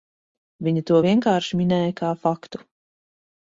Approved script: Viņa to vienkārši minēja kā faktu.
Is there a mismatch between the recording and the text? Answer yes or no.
no